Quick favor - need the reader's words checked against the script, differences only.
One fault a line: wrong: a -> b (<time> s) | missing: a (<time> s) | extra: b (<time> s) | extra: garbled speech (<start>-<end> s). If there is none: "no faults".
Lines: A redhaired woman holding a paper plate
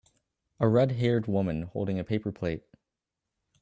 no faults